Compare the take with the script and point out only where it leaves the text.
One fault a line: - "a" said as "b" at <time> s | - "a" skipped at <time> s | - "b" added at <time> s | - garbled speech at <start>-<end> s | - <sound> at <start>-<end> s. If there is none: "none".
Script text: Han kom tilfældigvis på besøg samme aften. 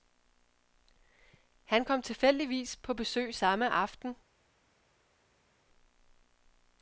none